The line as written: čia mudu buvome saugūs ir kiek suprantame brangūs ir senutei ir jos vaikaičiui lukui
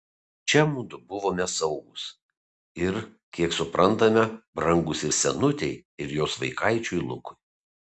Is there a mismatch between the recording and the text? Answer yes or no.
no